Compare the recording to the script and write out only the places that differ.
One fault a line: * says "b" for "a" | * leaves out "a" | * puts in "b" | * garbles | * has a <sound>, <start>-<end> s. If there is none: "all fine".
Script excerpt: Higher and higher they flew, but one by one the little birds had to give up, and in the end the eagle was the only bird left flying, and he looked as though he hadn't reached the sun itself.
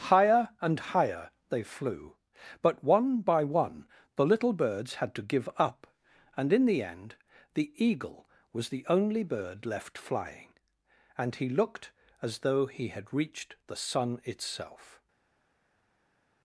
* says "had" for "hadn't"